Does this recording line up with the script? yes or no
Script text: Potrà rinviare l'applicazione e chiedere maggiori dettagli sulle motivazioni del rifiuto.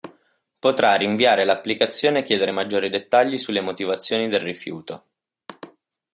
yes